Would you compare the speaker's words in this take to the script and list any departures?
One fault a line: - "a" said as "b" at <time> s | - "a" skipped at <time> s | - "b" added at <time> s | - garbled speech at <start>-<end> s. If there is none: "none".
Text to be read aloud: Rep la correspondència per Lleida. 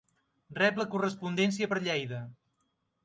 none